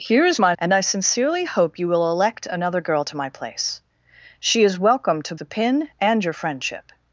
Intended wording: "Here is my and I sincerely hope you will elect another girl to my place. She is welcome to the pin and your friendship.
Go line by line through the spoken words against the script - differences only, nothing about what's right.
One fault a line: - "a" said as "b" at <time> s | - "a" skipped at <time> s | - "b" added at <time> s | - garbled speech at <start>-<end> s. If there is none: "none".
none